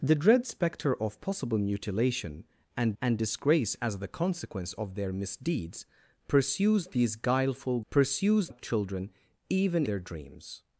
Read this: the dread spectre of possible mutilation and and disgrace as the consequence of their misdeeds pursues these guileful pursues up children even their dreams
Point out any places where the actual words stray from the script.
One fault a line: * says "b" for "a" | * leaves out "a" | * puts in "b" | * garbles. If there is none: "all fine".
all fine